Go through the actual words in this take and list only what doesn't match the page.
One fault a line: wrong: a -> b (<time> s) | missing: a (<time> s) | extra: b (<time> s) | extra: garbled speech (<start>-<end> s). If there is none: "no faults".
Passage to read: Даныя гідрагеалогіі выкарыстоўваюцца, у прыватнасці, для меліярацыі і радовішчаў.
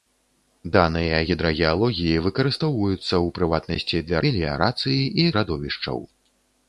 no faults